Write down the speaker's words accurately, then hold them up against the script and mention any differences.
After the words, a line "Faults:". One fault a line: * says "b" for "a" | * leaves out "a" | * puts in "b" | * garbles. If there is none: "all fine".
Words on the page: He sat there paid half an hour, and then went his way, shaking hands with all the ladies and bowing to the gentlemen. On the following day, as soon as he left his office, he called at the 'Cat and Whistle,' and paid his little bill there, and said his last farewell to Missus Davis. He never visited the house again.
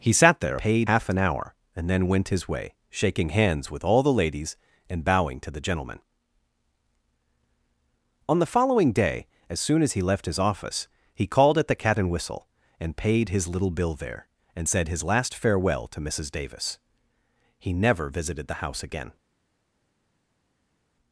He sat there paid half an hour, and then went his way, shaking hands with all the ladies and bowing to the gentlemen. On the following day, as soon as he left his office, he called at the 'Cat and Whistle,' and paid his little bill there, and said his last farewell to Missus Davis. He never visited the house again.
Faults:
all fine